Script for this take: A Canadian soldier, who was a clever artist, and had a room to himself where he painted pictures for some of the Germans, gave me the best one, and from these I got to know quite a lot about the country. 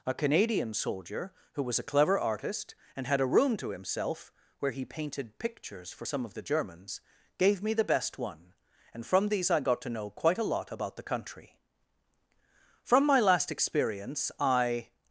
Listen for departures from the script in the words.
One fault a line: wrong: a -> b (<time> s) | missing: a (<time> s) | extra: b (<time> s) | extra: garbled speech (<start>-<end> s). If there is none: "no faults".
extra: From my last experience I (12.8 s)